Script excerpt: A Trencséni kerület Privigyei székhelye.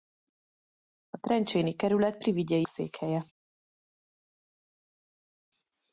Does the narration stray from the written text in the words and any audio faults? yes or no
no